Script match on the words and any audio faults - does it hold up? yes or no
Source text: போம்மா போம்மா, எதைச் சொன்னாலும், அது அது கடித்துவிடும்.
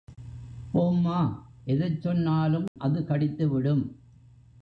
no